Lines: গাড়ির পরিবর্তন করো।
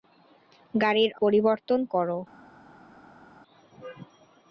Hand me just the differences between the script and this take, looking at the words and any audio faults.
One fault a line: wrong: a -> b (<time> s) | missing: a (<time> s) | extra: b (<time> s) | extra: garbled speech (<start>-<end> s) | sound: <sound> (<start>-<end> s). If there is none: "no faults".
no faults